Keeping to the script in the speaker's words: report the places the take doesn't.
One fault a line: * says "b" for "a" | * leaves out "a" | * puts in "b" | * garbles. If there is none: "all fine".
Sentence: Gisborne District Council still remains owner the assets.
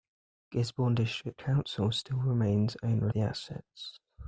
all fine